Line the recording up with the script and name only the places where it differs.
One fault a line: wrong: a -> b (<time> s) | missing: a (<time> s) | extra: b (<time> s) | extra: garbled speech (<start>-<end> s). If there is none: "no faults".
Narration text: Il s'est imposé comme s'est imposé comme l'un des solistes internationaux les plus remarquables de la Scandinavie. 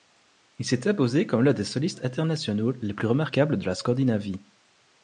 missing: s'est imposé comme (1.4 s)